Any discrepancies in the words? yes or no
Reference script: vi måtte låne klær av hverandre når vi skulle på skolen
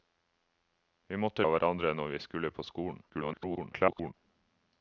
yes